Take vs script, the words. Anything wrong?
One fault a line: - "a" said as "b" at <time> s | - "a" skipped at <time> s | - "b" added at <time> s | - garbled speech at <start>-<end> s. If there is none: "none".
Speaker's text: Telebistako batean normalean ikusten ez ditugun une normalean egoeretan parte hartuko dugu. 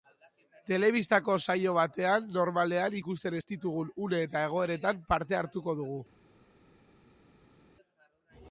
- "saio" added at 1.4 s
- "normalean" said as "eta" at 4.3 s